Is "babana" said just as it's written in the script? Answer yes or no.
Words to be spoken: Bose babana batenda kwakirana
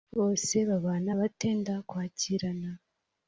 yes